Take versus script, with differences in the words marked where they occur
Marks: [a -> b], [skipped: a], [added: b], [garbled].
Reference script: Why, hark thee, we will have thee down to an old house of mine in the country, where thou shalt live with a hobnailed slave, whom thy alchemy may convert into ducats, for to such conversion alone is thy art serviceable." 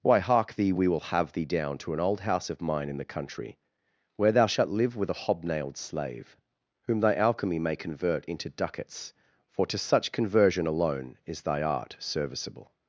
Why, hark thee, we will have thee down to an old house of mine in the country, where thou shalt live with a hobnailed slave, whom thy alchemy may convert into ducats, for to such conversion alone is thy art serviceable."